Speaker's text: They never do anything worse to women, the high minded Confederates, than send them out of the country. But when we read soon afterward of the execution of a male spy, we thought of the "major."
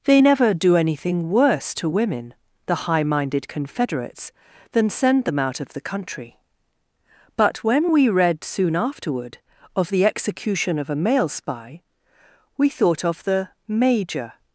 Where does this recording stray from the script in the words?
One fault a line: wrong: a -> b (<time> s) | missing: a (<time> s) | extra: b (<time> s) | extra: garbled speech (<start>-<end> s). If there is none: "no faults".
no faults